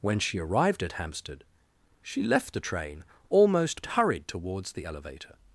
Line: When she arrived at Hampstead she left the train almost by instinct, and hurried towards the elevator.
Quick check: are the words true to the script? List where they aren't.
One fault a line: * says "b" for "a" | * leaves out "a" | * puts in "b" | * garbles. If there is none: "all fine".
* leaves out "by instinct and"